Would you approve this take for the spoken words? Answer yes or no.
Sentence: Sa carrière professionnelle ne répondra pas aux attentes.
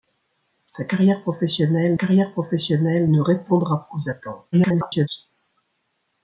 no